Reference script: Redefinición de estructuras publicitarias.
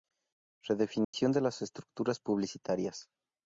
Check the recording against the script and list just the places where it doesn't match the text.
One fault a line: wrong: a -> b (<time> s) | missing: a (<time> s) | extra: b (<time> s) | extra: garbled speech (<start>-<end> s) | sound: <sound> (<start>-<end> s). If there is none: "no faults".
sound: dropout (1.0-1.1 s)
extra: las (1.4 s)